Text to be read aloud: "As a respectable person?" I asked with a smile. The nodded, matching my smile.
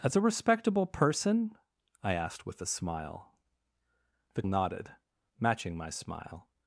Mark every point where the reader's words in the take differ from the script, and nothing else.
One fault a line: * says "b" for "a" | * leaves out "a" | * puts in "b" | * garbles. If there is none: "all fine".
all fine